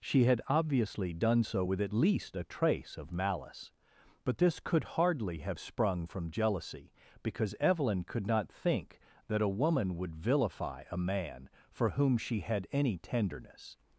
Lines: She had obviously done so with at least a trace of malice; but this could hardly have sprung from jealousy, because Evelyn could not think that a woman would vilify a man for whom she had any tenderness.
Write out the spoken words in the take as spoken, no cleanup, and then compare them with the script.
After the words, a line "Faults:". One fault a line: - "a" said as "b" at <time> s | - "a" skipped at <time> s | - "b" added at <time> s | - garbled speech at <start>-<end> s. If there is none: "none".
She had obviously done so with at least a trace of malice; but this could hardly have sprung from jealousy, because Evelyn could not think that a woman would vilify a man for whom she had any tenderness.
Faults:
none